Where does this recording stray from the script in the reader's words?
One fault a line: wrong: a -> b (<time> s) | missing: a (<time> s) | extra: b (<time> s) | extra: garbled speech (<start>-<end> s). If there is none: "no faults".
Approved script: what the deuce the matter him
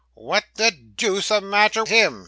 no faults